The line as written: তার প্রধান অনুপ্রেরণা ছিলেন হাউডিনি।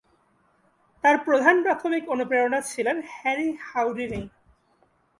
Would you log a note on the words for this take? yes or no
yes